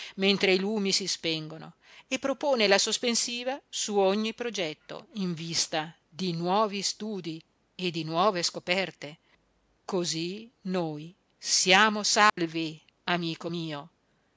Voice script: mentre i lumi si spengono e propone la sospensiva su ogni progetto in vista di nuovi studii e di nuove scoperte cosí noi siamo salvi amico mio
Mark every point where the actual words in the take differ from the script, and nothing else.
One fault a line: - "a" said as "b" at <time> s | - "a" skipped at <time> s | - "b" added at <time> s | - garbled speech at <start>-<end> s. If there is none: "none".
none